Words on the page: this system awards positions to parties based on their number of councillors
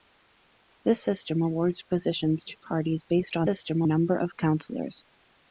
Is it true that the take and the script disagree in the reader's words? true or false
true